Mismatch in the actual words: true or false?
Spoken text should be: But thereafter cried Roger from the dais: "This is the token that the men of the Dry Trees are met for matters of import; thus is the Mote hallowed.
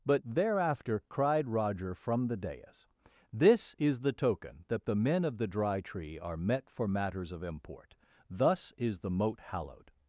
true